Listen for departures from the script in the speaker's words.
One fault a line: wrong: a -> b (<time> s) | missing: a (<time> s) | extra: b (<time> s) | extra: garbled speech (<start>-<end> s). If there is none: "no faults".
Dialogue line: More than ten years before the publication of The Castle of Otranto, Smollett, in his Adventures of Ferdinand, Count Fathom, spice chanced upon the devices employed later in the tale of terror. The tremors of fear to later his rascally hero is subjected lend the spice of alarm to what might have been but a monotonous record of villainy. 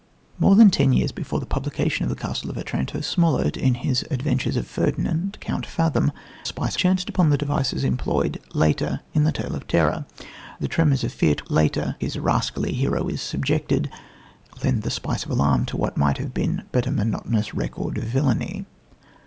no faults